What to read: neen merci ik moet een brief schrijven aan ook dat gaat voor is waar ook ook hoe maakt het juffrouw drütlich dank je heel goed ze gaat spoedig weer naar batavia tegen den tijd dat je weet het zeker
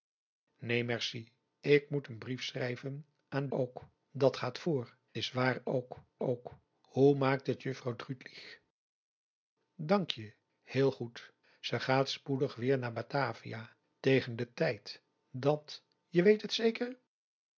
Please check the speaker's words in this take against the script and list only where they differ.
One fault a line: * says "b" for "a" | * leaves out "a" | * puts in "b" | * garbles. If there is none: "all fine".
all fine